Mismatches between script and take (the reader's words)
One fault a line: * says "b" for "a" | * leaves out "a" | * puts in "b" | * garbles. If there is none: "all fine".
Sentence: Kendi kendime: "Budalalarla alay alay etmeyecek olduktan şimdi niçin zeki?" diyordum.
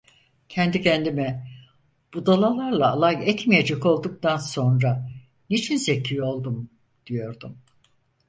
* leaves out "alay"
* says "sonra" for "şimdi"
* puts in "oldum"